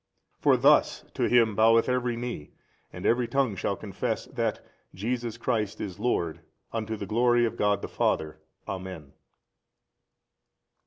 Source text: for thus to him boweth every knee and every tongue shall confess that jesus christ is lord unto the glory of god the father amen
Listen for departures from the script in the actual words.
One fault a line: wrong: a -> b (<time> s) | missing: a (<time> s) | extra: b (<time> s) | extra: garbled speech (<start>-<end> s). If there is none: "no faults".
no faults